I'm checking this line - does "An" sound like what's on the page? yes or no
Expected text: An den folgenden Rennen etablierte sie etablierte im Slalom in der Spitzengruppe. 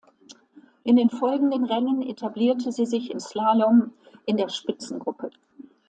no